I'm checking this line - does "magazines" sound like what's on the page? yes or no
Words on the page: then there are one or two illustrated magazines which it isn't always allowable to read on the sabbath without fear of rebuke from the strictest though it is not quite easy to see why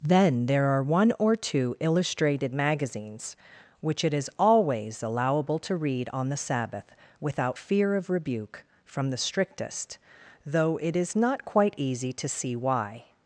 yes